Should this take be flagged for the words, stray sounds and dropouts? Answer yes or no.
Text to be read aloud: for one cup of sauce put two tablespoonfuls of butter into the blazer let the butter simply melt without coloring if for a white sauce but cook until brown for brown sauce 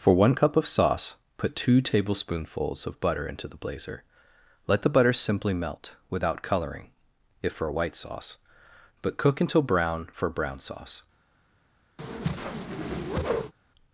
yes